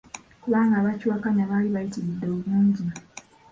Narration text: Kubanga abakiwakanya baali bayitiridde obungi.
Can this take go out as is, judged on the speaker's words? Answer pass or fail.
pass